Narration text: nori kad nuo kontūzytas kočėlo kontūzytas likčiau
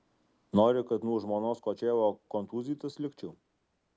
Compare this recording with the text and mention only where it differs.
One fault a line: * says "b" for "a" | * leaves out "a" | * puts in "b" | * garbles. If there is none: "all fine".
* says "žmonos" for "kontūzytas"